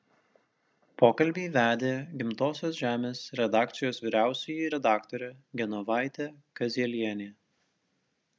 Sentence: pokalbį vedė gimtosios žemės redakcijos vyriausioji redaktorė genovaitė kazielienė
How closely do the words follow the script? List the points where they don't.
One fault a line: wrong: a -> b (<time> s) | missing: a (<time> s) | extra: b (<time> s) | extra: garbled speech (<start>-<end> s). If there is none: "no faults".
no faults